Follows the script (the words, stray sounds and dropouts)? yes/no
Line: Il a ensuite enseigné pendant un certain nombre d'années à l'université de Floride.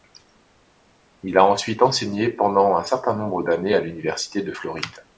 yes